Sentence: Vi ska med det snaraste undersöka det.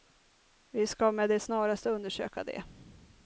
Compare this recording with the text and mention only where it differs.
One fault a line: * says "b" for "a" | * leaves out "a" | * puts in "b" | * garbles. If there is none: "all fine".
all fine